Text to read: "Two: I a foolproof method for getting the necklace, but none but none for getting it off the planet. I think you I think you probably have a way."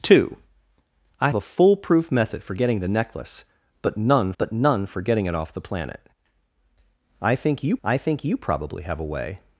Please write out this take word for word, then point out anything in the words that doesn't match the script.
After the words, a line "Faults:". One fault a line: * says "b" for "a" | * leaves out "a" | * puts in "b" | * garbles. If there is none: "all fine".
"Two: I a foolproof method for getting the necklace, but none but none for getting it off the planet. I think you I think you probably have a way."
Faults:
all fine